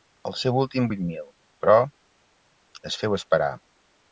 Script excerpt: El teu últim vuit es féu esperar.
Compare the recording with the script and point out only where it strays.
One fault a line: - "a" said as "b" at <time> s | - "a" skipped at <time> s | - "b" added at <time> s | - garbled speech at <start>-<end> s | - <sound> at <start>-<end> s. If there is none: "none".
- "teu" said as "seu" at 0.4 s
- "mil però" added at 1.1 s